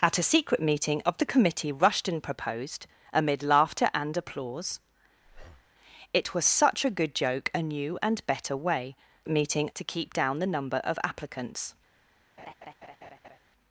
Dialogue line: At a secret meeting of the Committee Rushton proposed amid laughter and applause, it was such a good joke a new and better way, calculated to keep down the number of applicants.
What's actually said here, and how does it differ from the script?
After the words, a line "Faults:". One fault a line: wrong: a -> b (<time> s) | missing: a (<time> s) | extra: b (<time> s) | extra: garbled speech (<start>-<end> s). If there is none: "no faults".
At a secret meeting of the Committee Rushton proposed amid laughter and applause, it was such a good joke a new and better way, meeting to keep down the number of applicants.
Faults:
wrong: calculated -> meeting (9.3 s)